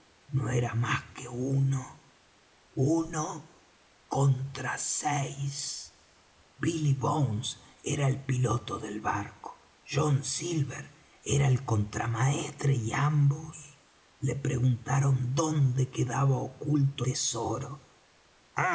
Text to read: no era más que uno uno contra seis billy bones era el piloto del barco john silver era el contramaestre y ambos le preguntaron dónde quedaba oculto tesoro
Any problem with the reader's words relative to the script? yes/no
no